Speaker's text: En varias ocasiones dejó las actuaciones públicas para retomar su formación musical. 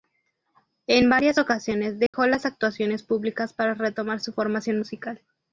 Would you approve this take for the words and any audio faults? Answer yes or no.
no